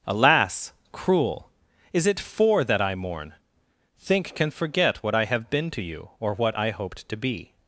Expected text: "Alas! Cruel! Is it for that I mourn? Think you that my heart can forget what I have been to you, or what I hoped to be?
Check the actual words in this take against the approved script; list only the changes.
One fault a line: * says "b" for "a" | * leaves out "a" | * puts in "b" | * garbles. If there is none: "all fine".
* leaves out "you that my heart"